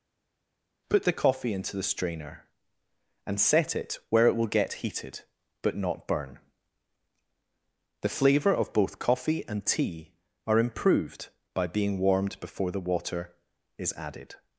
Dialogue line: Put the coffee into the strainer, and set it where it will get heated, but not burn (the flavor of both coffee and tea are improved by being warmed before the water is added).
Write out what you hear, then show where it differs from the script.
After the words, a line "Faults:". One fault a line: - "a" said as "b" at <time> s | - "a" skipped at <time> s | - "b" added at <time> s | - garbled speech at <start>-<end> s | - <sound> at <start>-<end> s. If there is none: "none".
Put the coffee into the strainer, and set it where it will get heated, but not burn (the flavor of both coffee and tea are improved by being warmed before the water is added).
Faults:
none